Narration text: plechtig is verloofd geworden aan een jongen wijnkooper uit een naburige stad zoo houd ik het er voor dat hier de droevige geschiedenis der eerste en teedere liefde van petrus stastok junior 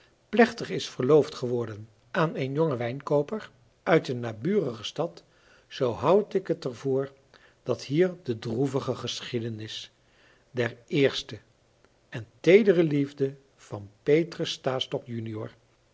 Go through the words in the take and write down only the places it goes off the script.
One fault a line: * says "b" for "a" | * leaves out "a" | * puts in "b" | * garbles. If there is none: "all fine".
all fine